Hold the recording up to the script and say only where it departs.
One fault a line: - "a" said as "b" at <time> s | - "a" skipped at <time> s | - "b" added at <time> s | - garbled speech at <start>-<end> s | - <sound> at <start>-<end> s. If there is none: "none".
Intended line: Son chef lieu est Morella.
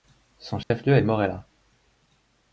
- dropout at 0.6-0.7 s